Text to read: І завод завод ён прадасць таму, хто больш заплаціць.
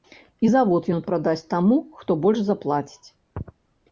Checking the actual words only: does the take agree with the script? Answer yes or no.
no